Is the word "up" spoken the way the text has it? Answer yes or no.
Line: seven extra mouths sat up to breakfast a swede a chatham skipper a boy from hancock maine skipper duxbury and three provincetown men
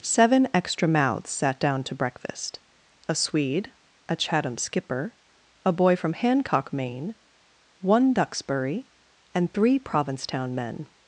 no